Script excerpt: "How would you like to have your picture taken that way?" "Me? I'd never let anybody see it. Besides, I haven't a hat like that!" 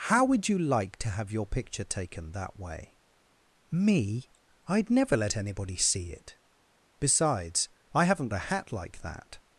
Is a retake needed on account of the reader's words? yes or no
no